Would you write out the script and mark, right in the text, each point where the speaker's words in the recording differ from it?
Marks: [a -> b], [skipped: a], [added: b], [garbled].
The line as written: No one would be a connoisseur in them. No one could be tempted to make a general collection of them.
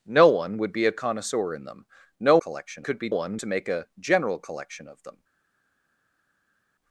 No one would be a connoisseur in them. No [one -> collection] could be [tempted -> one] to make a general collection of them.